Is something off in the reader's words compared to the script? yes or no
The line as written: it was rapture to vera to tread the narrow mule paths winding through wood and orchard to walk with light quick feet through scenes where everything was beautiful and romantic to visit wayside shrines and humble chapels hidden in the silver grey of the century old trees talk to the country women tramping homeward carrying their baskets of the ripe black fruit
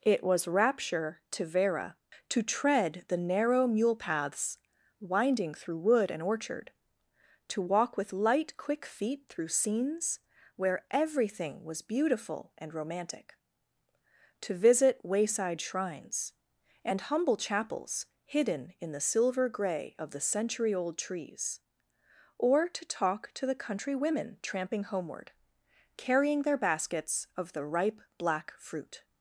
yes